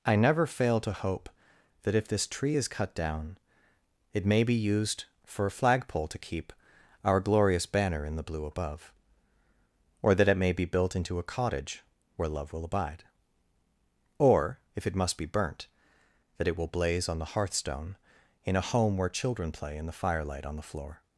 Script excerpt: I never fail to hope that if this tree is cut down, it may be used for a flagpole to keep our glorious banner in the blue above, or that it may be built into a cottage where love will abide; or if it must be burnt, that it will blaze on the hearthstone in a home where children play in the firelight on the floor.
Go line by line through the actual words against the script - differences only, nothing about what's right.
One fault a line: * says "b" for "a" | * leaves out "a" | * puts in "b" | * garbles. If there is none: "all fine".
all fine